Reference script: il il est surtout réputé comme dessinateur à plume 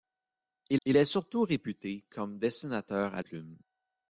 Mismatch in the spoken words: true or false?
false